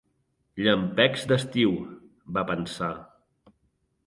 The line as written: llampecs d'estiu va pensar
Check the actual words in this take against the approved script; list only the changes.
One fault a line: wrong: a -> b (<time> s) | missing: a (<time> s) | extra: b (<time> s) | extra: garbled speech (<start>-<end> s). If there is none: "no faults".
no faults